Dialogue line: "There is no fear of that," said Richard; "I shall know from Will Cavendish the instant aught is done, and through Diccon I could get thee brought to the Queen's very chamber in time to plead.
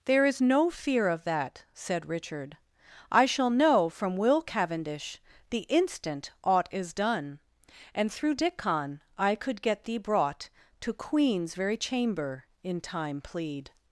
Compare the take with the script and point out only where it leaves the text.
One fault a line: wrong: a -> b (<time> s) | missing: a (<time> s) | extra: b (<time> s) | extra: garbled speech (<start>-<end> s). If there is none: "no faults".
missing: the (10.9 s)
missing: to (13.2 s)